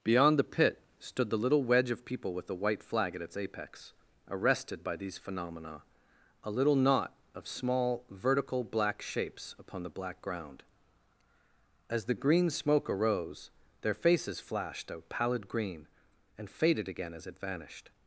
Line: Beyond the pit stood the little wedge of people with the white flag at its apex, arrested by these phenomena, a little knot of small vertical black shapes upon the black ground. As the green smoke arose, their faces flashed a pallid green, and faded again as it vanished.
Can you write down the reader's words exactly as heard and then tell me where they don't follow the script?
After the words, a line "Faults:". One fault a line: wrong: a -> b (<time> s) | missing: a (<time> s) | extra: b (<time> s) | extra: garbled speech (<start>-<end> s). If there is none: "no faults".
Beyond the pit stood the little wedge of people with the white flag at its apex, arrested by these phenomena, a little knot of small vertical black shapes upon the black ground. As the green smoke arose, their faces flashed a pallid green, and faded again as it vanished.
Faults:
no faults